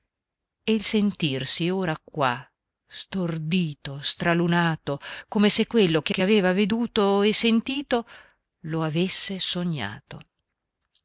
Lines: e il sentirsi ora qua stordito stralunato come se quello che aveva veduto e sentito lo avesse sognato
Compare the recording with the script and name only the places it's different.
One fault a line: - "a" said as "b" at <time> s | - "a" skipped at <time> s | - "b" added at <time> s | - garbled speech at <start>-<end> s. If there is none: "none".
- "che" added at 6.1 s